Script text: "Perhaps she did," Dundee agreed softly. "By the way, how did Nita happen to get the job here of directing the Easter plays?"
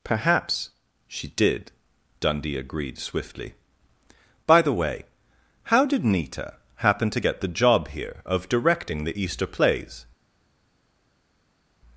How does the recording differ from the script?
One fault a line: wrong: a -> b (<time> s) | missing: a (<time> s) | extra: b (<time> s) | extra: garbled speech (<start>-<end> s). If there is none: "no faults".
wrong: softly -> swiftly (3.0 s)